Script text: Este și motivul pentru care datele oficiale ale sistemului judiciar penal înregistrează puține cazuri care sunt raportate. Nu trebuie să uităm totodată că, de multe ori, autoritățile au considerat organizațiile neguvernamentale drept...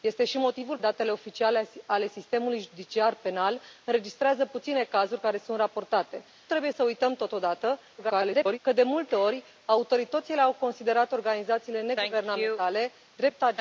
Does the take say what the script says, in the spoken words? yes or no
no